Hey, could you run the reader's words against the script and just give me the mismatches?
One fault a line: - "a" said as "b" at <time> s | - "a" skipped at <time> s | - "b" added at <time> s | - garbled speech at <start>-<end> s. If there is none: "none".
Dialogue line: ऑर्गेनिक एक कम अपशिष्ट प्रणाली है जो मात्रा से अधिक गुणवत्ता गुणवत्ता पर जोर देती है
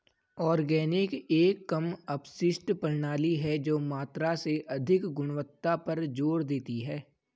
- "गुणवत्ता" skipped at 5.7 s